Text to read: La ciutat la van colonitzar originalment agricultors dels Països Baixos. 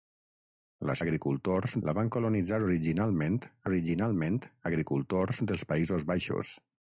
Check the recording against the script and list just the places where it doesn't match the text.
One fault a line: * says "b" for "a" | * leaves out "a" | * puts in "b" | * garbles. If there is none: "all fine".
* says "agricultors" for "ciutat"
* puts in "originalment"